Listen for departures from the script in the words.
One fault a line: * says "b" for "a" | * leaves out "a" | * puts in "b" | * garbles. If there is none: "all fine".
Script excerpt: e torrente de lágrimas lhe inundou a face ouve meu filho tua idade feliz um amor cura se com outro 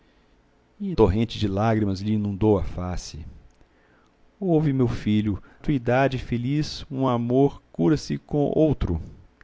all fine